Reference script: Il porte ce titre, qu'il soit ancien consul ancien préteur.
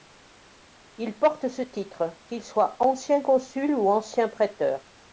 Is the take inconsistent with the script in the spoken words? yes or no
yes